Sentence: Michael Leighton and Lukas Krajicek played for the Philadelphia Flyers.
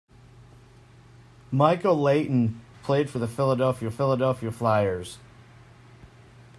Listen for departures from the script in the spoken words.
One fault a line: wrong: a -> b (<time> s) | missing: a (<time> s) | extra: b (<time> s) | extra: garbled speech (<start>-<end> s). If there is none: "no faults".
missing: and Lukas Krajicek (2.6 s)
extra: Philadelphia (3.9 s)